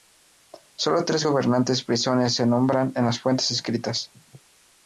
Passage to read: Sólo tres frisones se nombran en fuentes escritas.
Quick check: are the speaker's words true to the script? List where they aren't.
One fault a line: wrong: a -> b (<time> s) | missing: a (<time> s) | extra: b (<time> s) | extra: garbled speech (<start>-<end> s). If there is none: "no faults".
extra: gobernantes (1.2 s)
extra: las (3.1 s)